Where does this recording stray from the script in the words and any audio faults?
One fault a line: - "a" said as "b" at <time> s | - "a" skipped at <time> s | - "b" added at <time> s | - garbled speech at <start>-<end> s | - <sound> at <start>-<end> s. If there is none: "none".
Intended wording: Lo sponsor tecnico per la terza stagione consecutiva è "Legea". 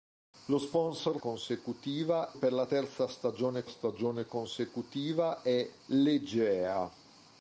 - "tecnico" said as "consecutiva" at 1.2 s
- "stagione" added at 3.6 s